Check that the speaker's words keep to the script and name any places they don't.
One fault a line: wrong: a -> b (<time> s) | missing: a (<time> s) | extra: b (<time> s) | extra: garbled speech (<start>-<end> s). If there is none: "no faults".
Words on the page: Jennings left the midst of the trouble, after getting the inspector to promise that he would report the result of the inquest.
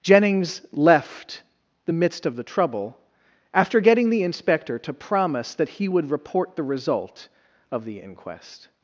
no faults